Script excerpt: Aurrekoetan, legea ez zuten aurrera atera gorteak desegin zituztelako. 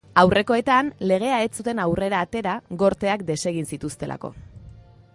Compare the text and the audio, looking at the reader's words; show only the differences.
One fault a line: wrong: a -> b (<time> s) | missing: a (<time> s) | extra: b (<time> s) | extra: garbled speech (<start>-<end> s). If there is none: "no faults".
no faults